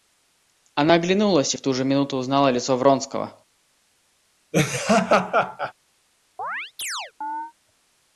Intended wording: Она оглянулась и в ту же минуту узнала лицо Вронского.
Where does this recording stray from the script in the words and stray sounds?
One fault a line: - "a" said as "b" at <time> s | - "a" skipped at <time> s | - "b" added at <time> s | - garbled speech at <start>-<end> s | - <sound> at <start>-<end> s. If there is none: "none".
- laugh at 4.5-5.7 s
- chirp at 6.4-7.5 s